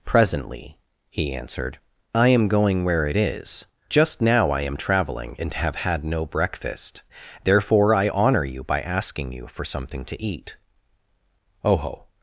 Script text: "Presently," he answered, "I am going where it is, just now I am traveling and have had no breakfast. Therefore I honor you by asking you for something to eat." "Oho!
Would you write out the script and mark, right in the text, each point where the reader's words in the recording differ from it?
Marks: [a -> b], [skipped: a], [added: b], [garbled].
"Presently," he answered, "I am going where it is, just now I am traveling and have had no breakfast. Therefore I honor you by asking you for something to eat." "Oho!